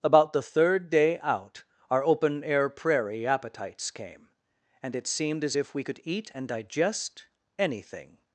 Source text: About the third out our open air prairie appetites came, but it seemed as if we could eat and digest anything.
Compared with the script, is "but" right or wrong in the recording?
wrong